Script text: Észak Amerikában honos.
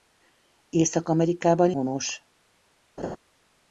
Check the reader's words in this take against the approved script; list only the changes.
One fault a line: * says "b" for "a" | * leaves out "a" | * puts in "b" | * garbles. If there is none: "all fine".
all fine